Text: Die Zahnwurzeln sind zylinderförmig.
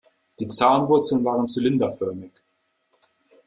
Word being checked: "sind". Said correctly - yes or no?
no